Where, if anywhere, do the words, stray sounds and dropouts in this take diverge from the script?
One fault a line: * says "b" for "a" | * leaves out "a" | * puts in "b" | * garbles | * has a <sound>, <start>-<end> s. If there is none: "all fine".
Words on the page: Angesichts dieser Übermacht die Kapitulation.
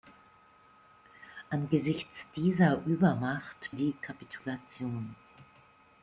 all fine